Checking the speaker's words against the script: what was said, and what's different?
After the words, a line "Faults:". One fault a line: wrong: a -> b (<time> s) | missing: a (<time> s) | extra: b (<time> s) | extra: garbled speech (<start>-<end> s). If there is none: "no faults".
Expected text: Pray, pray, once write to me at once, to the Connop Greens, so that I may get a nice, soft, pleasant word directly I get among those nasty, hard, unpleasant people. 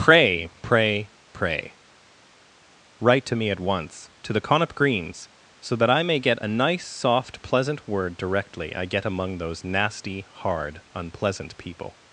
Pray, pray, pray write to me at once, to the Connop Greens, so that I may get a nice, soft, pleasant word directly I get among those nasty, hard, unpleasant people.
Faults:
wrong: once -> pray (1.3 s)